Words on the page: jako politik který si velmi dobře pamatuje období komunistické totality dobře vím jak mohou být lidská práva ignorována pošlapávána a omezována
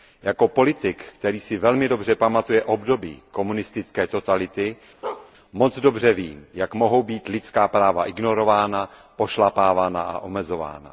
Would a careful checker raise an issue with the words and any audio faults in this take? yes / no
yes